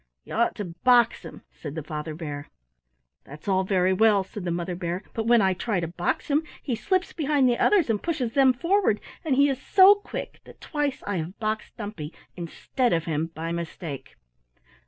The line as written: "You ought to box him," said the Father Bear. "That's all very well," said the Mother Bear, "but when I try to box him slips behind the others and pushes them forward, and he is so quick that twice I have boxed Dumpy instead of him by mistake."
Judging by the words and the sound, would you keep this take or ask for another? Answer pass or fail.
fail